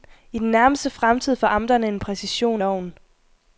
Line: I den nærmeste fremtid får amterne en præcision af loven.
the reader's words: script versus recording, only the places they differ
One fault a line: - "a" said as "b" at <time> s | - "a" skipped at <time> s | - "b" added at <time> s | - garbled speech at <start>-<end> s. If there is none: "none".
- "af" skipped at 2.6 s